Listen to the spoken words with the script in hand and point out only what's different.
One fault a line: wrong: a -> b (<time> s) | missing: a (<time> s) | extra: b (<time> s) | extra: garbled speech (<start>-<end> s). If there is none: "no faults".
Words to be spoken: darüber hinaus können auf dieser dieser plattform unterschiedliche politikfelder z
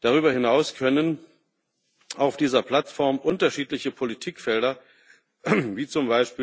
missing: dieser (2.6 s)
extra: wie (5.4 s)